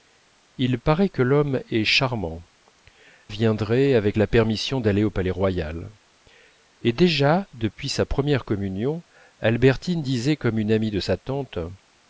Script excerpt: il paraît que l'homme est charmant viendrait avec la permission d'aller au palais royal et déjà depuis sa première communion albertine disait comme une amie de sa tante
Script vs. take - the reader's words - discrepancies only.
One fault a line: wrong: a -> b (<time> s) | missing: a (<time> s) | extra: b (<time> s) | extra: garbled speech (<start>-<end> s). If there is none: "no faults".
no faults